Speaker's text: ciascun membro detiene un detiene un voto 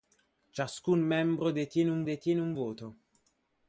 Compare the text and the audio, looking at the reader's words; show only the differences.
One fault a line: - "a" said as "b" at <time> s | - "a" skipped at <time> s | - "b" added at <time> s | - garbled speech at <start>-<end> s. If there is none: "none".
none